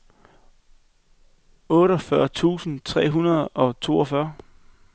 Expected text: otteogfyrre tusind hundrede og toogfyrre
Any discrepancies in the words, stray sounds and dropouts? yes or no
yes